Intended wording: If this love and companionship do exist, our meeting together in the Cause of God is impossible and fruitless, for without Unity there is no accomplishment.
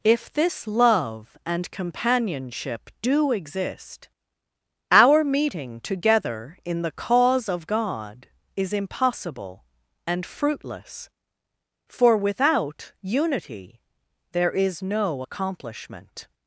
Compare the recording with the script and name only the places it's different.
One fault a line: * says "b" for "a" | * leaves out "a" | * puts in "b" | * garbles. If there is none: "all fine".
all fine